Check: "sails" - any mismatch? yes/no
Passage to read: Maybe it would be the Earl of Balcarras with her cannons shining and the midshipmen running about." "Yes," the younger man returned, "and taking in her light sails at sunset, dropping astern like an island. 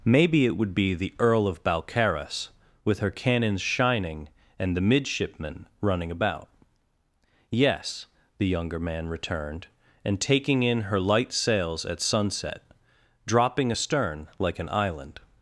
no